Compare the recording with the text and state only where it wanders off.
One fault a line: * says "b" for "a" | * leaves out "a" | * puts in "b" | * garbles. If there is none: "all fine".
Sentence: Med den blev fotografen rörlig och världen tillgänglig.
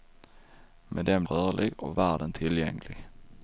* leaves out "blev fotografen"